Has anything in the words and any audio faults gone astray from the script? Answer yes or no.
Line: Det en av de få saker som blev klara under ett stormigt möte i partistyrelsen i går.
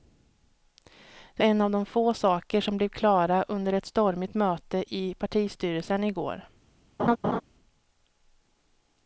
yes